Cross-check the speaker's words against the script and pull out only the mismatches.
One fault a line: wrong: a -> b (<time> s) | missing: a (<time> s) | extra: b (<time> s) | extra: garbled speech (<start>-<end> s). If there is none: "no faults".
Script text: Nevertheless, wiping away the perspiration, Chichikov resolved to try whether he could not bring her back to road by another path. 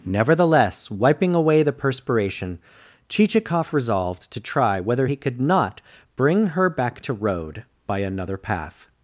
no faults